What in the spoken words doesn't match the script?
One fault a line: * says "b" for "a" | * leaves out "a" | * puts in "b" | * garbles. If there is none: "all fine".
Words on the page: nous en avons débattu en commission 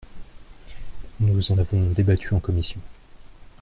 all fine